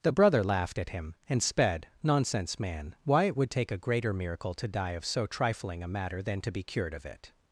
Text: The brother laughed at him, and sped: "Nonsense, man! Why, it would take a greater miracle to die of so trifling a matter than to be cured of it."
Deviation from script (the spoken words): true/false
false